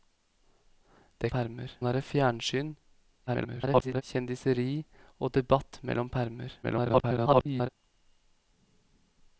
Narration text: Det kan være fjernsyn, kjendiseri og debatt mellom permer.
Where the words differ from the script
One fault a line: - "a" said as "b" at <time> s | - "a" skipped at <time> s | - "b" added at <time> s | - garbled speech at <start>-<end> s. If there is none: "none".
- "kan" said as "permer" at 1.3 s
- garbled speech at 3.3-4.0 s
- garbled speech at 6.6-7.7 s